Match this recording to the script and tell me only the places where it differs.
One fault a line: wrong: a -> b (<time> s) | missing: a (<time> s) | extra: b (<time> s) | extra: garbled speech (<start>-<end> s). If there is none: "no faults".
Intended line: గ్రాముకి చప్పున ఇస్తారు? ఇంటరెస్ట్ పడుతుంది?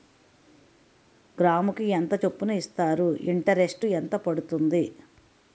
extra: ఎంత (1.9 s)
extra: ఎంత (3.8 s)